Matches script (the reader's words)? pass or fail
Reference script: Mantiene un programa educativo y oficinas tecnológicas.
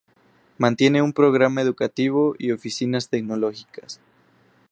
pass